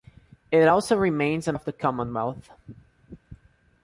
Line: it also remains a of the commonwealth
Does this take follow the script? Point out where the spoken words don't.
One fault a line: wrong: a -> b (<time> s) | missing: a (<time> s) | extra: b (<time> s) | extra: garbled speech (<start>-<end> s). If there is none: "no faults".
no faults